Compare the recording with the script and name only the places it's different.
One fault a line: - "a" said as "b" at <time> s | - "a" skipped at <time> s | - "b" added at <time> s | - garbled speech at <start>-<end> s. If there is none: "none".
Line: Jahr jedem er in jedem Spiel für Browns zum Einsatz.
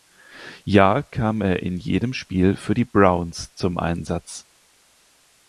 - "jedem" said as "kam" at 1.0 s
- "die" added at 2.7 s